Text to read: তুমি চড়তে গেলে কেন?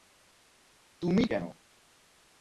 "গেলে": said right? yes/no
no